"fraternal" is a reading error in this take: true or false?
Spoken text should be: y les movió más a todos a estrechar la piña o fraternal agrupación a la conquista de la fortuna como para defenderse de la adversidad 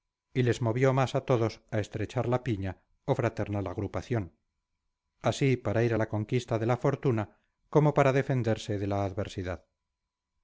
false